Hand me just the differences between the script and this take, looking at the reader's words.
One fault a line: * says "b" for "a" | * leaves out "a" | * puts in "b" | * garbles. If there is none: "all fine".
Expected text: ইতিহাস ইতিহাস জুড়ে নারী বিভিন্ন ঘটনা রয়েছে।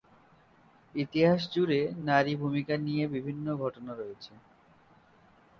* leaves out "ইতিহাস"
* puts in "ভূমিকা নিয়ে"